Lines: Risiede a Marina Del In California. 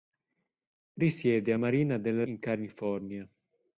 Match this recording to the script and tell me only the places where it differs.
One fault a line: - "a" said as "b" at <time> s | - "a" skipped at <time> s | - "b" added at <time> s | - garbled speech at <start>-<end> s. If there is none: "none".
none